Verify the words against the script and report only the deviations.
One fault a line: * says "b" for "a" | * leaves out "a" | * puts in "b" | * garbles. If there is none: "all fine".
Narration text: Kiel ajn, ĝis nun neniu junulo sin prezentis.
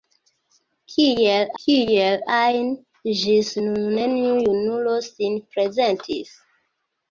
* puts in "kiel"